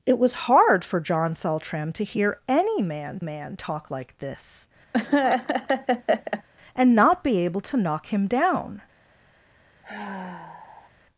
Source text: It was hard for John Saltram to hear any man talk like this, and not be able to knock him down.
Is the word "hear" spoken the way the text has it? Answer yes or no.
yes